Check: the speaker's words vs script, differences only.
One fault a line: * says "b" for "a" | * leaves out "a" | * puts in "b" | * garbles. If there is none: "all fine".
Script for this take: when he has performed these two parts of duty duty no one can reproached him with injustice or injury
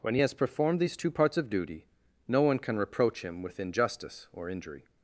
* leaves out "duty"
* says "reproach" for "reproached"